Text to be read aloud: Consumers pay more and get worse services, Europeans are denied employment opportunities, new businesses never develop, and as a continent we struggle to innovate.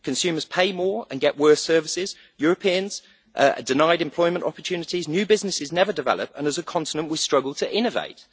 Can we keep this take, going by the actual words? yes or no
yes